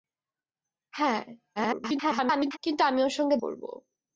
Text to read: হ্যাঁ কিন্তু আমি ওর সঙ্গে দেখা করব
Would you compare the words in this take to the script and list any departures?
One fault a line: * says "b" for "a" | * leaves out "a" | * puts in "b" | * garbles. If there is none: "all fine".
* garbles
* leaves out "দেখা"